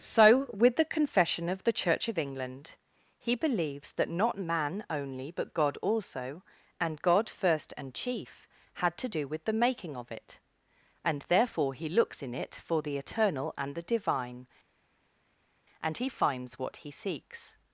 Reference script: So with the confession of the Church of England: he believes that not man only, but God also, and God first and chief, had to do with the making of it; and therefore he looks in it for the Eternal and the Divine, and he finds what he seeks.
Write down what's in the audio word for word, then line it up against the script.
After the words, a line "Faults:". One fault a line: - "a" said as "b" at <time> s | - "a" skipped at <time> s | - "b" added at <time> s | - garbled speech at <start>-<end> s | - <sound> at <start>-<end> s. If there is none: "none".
So with the confession of the Church of England: he believes that not man only, but God also, and God first and chief, had to do with the making of it; and therefore he looks in it for the Eternal and the Divine, and he finds what he seeks.
Faults:
none